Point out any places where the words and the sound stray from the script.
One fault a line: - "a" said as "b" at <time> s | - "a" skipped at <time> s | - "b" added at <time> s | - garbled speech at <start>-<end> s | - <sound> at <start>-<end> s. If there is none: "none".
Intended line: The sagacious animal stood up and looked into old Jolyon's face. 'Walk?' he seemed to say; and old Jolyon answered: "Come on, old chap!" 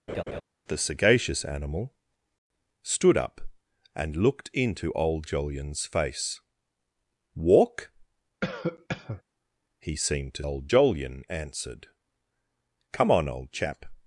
- laugh at 0.1-0.4 s
- cough at 8.4-9.2 s
- "say and" skipped at 10.4 s